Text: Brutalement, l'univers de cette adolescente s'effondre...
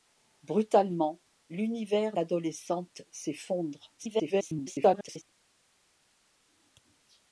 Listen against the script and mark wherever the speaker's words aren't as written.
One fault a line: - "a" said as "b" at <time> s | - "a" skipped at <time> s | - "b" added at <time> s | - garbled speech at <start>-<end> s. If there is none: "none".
- "de cette" skipped at 2.2 s
- garbled speech at 4.0-5.2 s